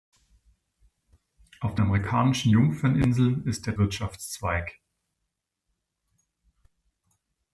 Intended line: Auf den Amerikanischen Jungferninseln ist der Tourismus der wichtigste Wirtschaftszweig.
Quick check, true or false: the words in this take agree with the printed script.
false